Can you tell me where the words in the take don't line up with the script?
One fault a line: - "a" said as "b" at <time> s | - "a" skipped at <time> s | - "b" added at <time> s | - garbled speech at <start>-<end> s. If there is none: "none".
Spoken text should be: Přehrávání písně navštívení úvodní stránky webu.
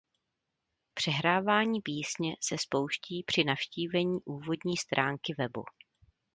- "se spouští při" added at 2.4 s